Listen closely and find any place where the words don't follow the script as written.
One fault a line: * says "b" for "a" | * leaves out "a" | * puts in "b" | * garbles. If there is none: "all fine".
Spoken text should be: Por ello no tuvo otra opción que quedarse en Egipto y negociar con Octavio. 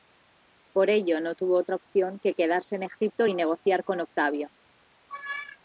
all fine